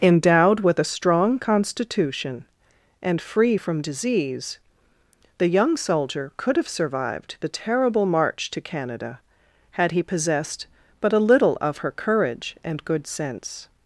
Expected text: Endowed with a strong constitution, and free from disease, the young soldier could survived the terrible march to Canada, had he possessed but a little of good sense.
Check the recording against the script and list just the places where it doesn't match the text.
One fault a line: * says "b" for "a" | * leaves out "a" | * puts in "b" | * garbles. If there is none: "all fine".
* puts in "have"
* puts in "her courage and"